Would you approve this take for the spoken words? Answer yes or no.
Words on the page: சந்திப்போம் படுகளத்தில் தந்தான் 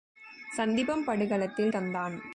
yes